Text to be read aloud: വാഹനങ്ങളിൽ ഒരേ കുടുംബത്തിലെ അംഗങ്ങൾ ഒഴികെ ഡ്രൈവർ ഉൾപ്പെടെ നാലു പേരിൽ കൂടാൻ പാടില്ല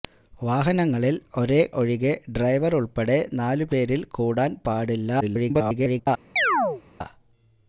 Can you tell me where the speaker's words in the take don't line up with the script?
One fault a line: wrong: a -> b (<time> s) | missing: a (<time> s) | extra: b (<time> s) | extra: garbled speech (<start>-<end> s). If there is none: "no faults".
missing: കുടുംബത്തിലെ അംഗങ്ങൾ (1.6 s)
extra: garbled speech (5.2-6.1 s)